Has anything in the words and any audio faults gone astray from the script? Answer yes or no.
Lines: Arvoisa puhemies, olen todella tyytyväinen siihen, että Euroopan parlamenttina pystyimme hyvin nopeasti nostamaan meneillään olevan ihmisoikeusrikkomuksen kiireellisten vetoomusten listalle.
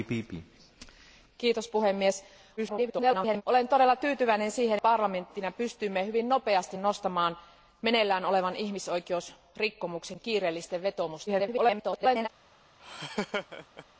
yes